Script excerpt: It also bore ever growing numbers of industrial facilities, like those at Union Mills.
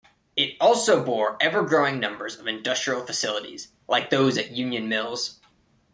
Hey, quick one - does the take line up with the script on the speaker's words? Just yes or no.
yes